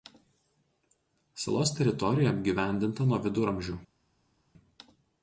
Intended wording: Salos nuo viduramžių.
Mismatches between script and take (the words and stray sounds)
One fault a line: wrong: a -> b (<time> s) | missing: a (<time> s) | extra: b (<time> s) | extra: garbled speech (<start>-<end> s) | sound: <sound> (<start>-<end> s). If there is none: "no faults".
extra: teritorija apgyvendinta (1.8 s)